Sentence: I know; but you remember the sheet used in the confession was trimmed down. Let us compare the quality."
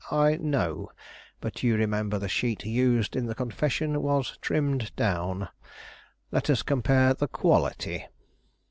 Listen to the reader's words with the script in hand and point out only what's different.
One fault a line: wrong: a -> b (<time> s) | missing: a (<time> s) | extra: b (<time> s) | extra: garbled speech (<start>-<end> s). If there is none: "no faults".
no faults